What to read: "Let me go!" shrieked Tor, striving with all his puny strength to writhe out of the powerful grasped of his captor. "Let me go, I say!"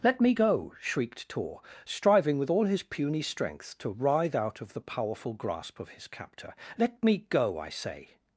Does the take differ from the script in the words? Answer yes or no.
yes